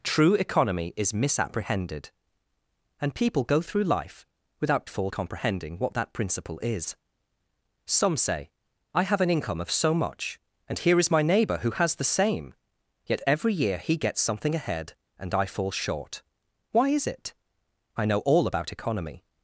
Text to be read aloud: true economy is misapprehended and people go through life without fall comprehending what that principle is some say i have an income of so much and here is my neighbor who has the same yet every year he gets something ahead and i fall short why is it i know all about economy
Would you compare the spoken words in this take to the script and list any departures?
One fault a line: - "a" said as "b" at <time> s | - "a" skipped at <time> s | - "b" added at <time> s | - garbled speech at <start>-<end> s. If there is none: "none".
none